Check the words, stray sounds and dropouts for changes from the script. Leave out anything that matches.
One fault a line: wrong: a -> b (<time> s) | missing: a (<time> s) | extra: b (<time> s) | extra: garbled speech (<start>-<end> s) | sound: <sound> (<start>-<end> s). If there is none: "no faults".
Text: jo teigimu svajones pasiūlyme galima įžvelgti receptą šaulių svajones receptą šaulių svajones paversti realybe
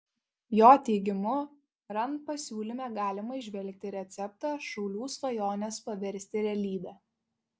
wrong: svajones -> rand (2.0 s)
missing: receptą šaulių svajones (5.8 s)